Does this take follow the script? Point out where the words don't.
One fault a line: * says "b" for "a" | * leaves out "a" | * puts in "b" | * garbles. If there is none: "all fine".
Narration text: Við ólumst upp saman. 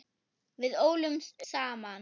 * leaves out "upp"